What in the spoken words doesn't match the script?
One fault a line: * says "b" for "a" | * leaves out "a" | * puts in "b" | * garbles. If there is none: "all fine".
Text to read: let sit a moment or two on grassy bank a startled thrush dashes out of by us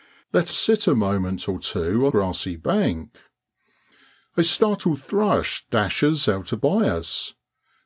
all fine